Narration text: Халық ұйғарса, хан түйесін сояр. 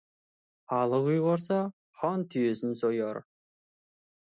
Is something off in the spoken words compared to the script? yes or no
no